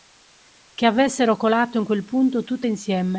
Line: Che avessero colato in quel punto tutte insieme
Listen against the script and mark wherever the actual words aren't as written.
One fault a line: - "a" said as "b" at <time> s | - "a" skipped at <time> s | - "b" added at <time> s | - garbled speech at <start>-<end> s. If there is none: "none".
none